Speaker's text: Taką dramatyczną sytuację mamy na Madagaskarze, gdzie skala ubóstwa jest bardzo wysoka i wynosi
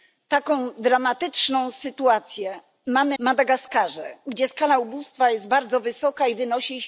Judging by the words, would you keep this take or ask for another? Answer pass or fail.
fail